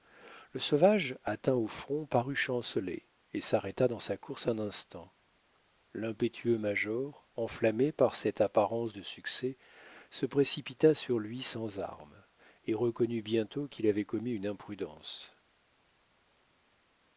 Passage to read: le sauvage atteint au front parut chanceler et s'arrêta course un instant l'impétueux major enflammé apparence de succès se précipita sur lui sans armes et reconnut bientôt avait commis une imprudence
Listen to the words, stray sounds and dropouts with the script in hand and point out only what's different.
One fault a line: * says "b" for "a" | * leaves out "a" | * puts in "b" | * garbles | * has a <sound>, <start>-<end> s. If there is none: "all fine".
* puts in "dans sa"
* puts in "par cette"
* puts in "qu'il"